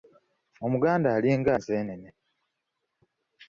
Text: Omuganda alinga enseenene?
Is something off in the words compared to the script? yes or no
no